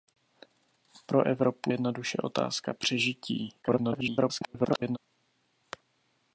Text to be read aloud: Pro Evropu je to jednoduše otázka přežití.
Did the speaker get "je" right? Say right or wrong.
wrong